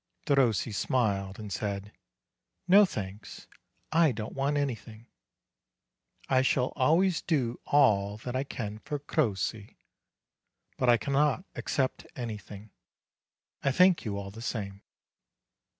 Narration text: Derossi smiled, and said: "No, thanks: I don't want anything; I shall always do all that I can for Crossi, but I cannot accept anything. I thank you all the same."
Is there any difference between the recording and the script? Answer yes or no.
no